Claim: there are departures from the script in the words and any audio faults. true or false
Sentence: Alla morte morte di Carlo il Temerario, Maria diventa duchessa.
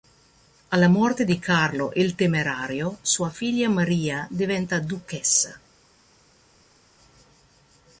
true